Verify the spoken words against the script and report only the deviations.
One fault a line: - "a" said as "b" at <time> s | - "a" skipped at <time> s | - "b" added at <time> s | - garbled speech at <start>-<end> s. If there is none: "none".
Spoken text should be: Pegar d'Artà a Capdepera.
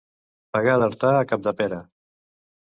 none